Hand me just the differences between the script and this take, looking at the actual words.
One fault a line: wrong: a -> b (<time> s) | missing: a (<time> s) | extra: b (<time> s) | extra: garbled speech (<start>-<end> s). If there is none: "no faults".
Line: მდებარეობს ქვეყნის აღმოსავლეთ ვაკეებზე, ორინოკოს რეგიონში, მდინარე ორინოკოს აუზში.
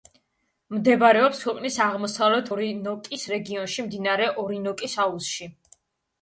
missing: ვაკეებზე (2.5 s)